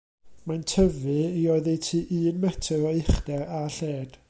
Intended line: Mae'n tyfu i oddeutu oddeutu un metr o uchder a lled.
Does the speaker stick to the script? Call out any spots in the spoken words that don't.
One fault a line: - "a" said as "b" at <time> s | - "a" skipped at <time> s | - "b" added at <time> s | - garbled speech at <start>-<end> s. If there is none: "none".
- "oddeutu" skipped at 2.0 s